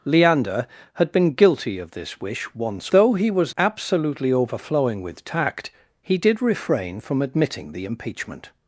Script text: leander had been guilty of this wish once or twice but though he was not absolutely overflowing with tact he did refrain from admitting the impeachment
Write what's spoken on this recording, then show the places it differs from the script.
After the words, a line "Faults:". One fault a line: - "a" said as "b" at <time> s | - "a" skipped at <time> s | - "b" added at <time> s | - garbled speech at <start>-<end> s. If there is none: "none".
leander had been guilty of this wish once though he was absolutely overflowing with tact he did refrain from admitting the impeachment
Faults:
- "or twice but" skipped at 2.9 s
- "not" skipped at 3.5 s